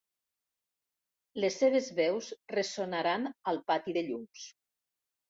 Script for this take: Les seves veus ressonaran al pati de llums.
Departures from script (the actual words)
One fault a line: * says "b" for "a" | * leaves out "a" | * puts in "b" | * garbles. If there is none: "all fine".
all fine